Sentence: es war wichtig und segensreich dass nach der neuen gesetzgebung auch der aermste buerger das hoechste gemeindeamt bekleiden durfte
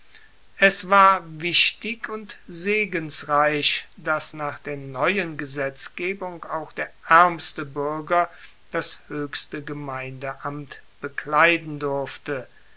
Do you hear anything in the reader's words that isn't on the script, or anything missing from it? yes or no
no